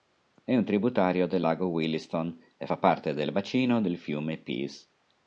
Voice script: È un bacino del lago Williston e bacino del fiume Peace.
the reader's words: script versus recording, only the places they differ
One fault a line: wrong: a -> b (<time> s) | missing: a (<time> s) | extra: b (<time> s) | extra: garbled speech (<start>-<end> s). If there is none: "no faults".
wrong: bacino -> tributario (0.7 s)
extra: fa parte del (2.7 s)